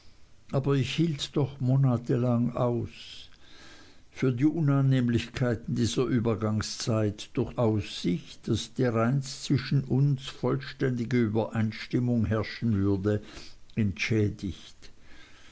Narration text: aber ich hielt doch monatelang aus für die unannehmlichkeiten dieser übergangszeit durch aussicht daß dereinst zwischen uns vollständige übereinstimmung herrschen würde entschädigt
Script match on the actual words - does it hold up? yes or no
yes